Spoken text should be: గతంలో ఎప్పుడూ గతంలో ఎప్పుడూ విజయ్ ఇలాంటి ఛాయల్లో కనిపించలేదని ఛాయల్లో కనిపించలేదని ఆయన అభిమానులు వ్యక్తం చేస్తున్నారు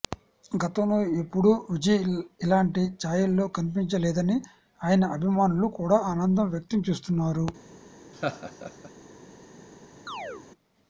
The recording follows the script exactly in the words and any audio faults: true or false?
false